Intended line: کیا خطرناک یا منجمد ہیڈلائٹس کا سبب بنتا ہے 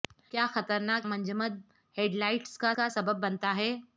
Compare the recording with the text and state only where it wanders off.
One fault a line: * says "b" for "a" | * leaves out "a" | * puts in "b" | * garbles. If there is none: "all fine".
* leaves out "یا"
* puts in "کا"